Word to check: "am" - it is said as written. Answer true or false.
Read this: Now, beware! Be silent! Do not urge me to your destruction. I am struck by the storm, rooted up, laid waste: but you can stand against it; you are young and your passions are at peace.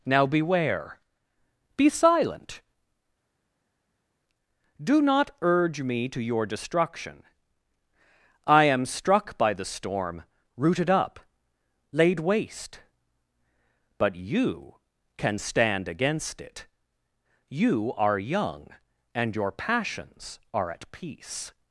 true